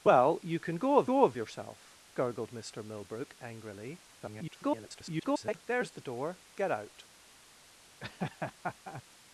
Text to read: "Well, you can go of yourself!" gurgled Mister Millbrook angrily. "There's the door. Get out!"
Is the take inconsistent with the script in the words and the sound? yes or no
yes